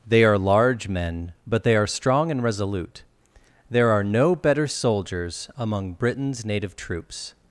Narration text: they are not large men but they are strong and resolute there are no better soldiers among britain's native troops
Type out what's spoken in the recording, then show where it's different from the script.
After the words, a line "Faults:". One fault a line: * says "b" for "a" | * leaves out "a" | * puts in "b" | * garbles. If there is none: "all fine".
they are large men but they are strong and resolute there are no better soldiers among britain's native troops
Faults:
* leaves out "not"